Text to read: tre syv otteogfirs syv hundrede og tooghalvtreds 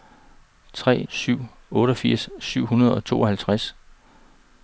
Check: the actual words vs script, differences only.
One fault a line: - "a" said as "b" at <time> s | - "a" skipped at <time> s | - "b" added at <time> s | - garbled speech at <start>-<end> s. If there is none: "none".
none